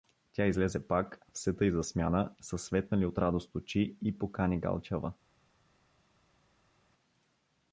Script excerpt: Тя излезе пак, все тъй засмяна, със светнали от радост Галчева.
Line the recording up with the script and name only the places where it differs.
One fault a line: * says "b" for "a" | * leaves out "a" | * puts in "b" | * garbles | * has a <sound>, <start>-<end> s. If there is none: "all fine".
* puts in "очи и покани"